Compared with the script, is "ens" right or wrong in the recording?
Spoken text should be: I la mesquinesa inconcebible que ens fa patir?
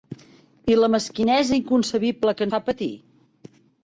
wrong